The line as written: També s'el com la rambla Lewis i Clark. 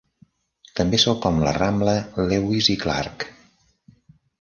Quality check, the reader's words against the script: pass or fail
pass